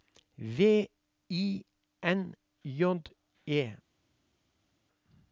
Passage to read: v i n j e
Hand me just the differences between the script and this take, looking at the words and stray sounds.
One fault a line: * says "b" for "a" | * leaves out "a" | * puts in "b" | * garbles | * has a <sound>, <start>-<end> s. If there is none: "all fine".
all fine